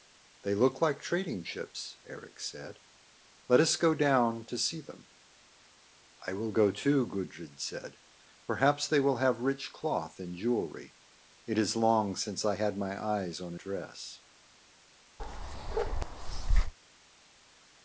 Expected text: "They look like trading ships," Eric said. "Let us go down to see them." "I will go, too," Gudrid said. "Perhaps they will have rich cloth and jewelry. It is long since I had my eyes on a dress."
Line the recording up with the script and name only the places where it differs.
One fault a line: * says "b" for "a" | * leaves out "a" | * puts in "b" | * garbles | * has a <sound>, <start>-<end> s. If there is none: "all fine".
* has a bark, 15.2-16.7 s